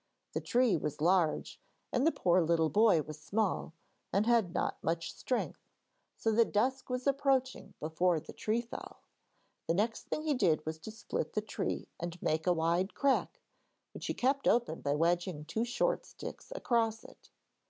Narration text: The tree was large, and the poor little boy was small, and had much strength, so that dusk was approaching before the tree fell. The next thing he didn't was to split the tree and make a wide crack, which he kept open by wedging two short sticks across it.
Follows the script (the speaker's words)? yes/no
no